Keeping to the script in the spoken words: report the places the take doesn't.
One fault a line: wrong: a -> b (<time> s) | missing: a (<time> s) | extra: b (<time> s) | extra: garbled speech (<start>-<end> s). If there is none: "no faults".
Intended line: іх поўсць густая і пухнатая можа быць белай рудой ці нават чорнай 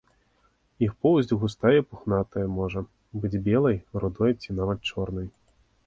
no faults